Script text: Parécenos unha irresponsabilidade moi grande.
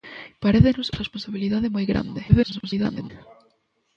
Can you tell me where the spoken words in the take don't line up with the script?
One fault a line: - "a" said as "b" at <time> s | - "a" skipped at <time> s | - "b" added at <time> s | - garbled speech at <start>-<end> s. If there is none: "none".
- "unha" skipped at 0.9 s
- garbled speech at 2.3-3.1 s